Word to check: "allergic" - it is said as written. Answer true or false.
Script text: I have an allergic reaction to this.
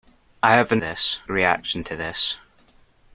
false